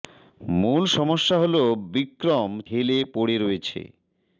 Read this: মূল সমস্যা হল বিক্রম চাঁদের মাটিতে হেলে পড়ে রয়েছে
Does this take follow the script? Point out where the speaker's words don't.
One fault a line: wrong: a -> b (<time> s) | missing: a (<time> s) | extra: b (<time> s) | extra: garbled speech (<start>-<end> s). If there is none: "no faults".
missing: চাঁদের মাটিতে (2.5 s)